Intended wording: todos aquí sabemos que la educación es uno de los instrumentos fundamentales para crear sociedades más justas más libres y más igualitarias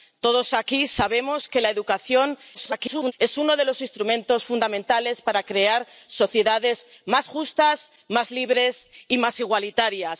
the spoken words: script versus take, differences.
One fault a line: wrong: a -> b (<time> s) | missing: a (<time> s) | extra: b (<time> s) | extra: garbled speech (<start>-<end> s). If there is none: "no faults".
extra: garbled speech (2.5-3.1 s)